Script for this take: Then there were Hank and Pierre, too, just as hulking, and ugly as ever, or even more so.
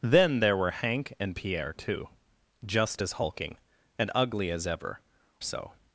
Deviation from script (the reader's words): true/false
true